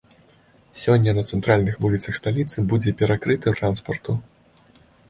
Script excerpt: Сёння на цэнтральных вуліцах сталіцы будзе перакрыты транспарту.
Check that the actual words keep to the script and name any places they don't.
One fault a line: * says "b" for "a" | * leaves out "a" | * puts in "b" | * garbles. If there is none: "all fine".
all fine